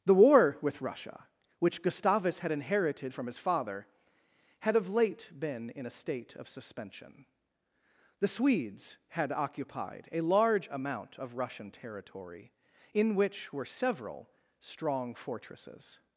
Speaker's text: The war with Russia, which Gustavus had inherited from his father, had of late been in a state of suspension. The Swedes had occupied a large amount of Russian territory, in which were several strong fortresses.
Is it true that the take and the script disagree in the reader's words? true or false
false